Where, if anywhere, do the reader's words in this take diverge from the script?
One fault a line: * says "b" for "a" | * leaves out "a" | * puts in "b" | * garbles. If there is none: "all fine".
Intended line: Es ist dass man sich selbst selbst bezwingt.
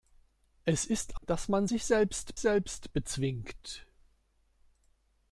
all fine